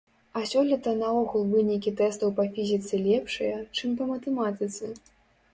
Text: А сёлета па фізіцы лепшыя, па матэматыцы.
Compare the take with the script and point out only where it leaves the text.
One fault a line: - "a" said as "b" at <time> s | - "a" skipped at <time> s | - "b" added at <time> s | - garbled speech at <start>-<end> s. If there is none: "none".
- "наогул вынікі тэстаў" added at 1.0 s
- "чым" added at 3.8 s